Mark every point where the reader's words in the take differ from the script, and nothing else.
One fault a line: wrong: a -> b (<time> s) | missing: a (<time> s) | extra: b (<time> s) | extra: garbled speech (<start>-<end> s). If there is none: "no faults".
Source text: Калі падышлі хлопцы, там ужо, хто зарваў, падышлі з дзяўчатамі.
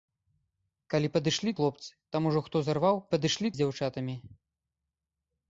no faults